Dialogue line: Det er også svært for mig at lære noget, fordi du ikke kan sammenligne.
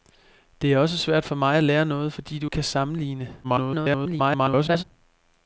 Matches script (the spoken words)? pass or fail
fail